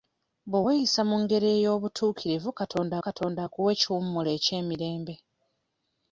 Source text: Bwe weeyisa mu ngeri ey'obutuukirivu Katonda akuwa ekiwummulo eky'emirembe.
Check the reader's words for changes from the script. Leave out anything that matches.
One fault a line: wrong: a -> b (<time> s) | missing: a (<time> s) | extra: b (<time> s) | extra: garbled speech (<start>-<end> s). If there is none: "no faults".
extra: Katonda (3.1 s)